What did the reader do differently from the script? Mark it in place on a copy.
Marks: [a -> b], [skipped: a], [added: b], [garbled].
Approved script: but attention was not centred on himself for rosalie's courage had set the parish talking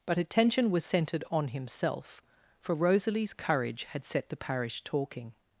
but attention was [skipped: not] centred on himself for rosalie's courage had set the parish talking